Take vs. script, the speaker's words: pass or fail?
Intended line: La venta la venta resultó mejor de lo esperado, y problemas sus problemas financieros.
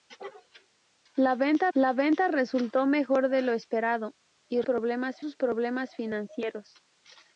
pass